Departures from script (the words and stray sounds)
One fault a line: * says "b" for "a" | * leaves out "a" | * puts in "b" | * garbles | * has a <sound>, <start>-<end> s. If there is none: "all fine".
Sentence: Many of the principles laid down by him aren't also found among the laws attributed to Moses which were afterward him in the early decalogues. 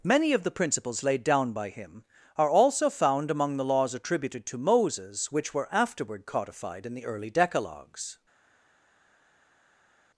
* says "are" for "aren't"
* says "codified" for "him"